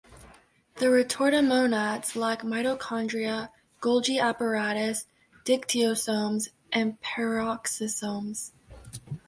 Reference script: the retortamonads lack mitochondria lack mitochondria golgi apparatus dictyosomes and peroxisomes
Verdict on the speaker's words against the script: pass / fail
fail